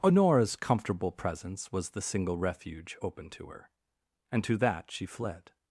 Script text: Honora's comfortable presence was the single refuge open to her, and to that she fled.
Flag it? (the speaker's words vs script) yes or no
no